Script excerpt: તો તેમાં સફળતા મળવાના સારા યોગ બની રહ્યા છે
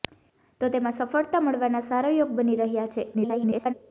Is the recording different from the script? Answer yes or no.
yes